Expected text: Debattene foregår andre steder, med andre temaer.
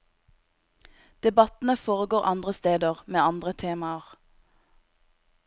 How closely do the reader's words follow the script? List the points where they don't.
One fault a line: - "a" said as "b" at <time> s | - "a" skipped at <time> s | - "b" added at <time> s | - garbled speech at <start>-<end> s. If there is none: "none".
none